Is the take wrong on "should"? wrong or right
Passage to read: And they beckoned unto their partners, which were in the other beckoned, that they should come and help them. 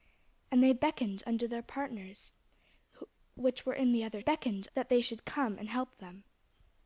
right